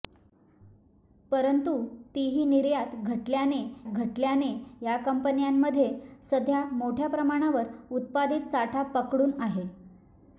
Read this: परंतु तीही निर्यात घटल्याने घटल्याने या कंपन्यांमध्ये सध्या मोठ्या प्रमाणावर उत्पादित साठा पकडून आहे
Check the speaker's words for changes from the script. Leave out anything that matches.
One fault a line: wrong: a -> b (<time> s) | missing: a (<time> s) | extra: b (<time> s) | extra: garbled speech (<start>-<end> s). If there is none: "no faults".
no faults